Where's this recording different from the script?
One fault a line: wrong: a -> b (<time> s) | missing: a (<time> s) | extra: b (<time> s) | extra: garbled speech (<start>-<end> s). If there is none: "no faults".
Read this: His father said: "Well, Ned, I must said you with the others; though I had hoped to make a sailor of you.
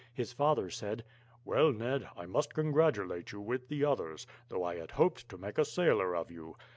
wrong: said -> congratulate (2.5 s)